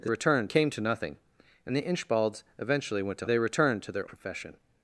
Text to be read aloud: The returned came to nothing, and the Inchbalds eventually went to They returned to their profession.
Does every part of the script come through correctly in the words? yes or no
yes